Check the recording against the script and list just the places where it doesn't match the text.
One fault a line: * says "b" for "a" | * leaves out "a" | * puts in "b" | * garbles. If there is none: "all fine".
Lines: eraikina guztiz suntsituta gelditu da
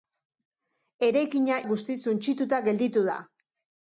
all fine